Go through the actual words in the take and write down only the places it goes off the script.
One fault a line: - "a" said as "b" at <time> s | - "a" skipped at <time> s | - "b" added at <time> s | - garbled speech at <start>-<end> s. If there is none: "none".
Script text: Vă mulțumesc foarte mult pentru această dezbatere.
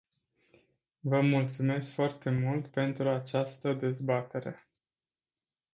none